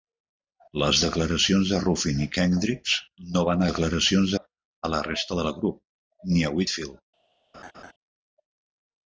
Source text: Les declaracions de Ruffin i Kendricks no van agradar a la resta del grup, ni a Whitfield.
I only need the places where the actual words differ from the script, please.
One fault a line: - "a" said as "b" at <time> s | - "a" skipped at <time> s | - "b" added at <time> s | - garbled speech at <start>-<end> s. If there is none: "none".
- "agradar" said as "declaracions" at 3.7 s